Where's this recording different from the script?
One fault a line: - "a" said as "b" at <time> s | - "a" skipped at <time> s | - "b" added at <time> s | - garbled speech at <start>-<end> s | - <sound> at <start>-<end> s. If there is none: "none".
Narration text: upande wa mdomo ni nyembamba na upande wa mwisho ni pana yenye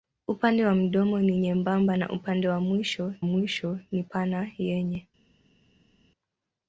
- "mwisho" added at 3.2 s